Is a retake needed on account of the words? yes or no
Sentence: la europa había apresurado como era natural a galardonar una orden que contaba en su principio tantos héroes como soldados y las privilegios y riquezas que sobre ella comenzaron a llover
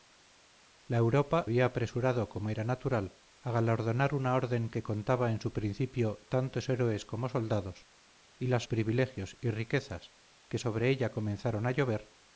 no